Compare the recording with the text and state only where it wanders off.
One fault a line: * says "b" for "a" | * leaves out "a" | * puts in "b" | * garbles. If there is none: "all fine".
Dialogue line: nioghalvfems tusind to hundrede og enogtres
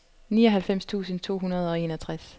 all fine